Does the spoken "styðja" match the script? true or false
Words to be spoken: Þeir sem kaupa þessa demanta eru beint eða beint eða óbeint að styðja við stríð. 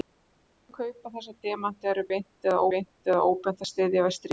true